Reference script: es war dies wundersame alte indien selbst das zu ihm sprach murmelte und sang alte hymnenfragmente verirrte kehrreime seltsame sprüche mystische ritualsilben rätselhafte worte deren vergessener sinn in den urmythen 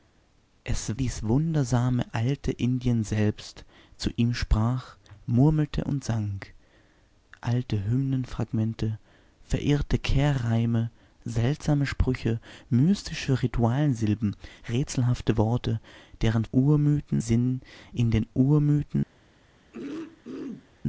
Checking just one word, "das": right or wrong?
wrong